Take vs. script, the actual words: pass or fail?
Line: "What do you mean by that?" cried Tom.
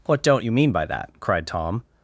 fail